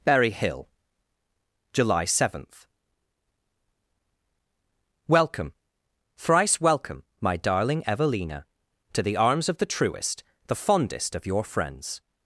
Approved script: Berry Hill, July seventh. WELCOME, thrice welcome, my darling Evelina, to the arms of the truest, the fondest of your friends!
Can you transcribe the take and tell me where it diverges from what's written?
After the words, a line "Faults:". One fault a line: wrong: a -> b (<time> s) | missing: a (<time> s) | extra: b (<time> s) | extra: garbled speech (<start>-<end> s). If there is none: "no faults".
Berry Hill, July seventh. WELCOME, thrice welcome, my darling Evelina, to the arms of the truest, the fondest of your friends!
Faults:
no faults